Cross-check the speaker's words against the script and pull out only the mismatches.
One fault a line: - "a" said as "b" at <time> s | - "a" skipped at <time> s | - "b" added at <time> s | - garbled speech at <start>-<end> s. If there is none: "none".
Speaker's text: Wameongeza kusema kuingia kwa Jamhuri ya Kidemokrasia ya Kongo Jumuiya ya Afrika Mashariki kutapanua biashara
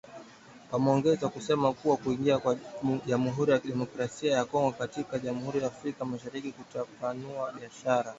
- "kuwa" added at 1.7 s
- "katika" added at 4.7 s